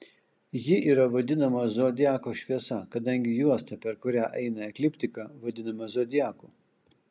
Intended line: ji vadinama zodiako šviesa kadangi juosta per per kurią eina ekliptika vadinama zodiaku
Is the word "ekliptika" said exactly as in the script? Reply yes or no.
yes